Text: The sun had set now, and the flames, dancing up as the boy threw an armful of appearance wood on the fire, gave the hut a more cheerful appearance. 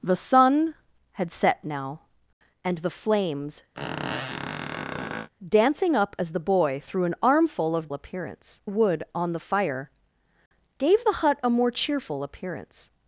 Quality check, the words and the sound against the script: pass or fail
fail